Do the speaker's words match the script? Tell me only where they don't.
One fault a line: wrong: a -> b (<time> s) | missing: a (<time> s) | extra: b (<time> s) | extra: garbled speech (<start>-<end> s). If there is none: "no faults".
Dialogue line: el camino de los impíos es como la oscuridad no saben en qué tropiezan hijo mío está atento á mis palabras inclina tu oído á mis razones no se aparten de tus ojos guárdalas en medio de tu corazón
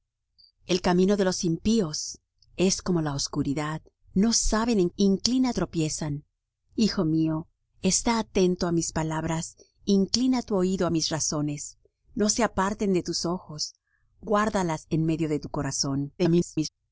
wrong: qué -> inclina (5.0 s)
extra: garbled speech (16.2-16.7 s)